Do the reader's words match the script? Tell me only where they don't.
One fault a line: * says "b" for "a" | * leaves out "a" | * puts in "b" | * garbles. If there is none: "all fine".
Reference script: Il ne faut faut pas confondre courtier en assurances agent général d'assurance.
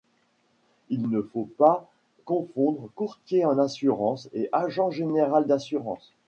* leaves out "faut"
* puts in "et"